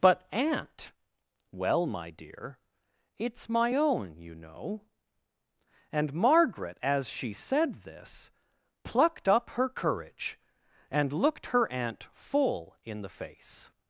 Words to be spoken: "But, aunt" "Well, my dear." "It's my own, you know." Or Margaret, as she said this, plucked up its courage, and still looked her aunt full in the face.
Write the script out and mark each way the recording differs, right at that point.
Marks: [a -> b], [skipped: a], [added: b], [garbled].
"But, aunt" "Well, my dear." "It's my own, you know." [Or -> And] Margaret, as she said this, plucked up [its -> her] courage, and [skipped: still] looked her aunt full in the face.